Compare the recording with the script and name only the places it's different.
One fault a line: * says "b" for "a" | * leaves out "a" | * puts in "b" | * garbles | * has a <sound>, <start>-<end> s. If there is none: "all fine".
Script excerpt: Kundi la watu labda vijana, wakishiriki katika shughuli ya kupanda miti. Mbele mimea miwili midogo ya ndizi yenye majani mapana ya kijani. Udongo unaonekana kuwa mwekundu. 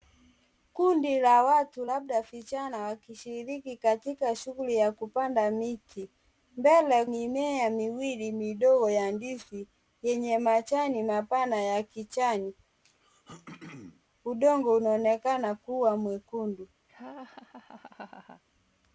* has a throat clearing, 12.8-14.0 s
* has a laugh, 16.9-18.4 s